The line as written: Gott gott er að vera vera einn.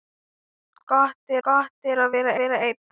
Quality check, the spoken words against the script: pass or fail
pass